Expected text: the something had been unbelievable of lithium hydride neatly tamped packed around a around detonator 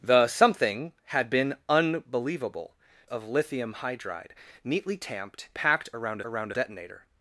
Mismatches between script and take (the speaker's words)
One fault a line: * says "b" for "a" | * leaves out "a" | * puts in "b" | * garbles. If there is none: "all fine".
all fine